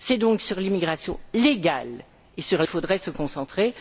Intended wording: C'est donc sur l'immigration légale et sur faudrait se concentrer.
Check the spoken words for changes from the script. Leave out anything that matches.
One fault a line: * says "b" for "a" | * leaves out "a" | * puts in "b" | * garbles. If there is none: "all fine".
all fine